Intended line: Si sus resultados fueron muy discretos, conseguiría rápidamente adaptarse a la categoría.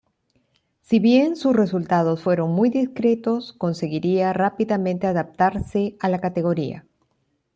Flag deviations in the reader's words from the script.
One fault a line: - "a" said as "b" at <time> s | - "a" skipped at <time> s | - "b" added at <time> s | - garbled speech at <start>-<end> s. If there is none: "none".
- "bien" added at 1.0 s